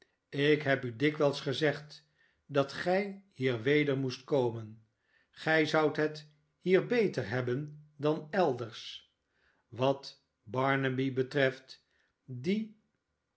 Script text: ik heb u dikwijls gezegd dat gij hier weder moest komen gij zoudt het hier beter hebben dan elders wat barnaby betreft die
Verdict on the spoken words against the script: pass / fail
pass